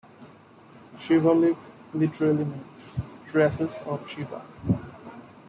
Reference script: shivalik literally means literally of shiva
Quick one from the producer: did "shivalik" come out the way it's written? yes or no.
yes